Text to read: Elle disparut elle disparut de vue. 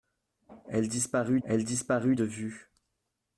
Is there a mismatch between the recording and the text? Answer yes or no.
no